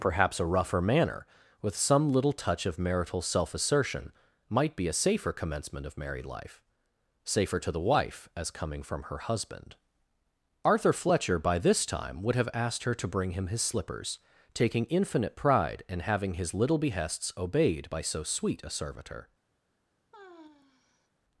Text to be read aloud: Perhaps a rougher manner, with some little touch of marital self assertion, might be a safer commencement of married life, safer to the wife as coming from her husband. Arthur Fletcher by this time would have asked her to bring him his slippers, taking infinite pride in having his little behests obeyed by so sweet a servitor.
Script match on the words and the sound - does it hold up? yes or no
no